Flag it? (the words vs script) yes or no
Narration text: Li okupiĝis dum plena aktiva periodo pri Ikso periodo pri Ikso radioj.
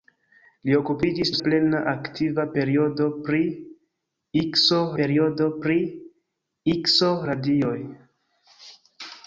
no